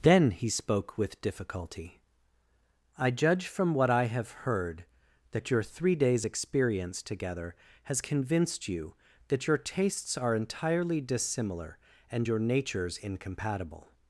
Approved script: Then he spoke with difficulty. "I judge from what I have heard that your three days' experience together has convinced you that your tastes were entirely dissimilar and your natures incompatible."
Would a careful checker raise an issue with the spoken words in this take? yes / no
yes